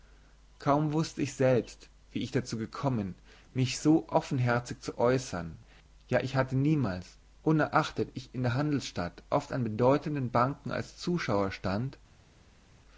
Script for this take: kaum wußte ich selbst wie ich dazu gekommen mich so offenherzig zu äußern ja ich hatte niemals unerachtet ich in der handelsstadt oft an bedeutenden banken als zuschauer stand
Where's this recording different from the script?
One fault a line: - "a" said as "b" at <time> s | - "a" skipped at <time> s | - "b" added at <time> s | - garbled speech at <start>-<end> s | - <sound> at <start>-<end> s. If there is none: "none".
none